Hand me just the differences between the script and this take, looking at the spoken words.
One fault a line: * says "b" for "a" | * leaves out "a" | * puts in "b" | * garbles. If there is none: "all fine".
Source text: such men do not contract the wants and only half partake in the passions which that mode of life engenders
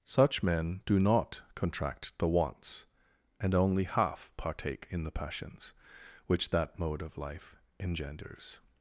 all fine